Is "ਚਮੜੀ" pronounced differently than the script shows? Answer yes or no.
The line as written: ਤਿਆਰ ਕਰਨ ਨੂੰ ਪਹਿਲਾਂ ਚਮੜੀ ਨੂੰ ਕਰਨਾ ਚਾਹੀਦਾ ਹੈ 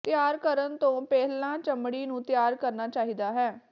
no